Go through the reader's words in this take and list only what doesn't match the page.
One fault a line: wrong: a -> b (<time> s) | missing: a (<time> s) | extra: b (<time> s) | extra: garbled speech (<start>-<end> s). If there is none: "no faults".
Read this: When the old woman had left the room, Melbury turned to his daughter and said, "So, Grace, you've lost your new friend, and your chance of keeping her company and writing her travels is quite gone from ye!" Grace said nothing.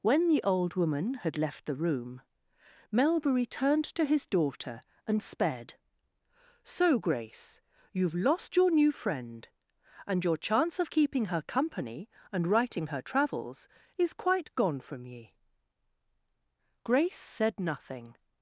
wrong: said -> sped (5.2 s)